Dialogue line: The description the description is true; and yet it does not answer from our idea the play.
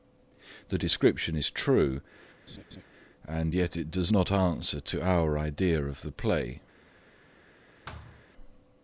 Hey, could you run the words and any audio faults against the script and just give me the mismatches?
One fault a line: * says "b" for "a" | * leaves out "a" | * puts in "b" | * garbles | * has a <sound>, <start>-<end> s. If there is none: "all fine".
* leaves out "the description"
* has a laugh, 2.5-2.8 s
* says "to" for "from"
* puts in "of"
* has a thud, 7.9-8.2 s